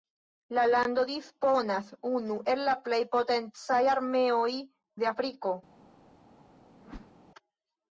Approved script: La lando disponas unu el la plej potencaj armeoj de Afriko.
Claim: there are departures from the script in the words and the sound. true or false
true